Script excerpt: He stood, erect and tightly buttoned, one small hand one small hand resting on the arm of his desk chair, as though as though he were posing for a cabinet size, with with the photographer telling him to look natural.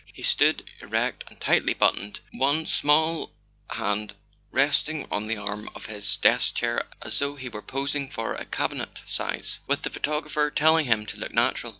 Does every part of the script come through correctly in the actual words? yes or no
no